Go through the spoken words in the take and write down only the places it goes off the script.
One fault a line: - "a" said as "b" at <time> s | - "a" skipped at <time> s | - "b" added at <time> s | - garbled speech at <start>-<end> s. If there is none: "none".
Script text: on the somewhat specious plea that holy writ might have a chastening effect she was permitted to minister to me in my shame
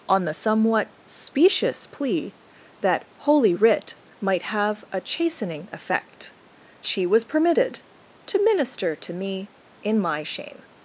none